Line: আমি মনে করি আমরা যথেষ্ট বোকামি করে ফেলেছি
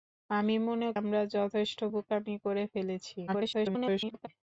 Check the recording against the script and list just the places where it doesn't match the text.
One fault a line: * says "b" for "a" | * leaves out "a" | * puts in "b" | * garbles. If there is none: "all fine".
* leaves out "করি"
* garbles